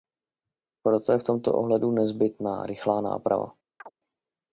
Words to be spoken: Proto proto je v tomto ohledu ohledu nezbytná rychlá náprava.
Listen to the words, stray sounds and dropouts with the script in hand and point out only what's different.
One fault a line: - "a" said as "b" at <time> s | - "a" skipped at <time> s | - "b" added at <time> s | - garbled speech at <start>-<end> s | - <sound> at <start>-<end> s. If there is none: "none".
- "proto" skipped at 1.1 s
- "ohledu" skipped at 1.9 s
- chirp at 3.8-3.9 s